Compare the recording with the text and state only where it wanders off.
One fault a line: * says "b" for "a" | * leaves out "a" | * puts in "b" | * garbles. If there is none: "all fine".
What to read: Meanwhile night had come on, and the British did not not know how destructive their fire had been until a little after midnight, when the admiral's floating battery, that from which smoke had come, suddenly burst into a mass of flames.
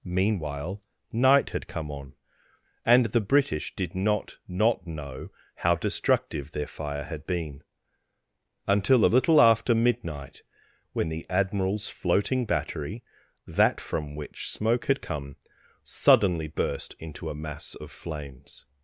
all fine